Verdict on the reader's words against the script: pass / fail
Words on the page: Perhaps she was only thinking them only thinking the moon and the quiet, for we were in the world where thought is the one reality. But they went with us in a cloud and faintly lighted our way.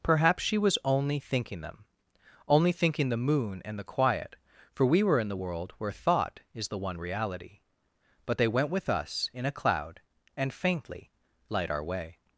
fail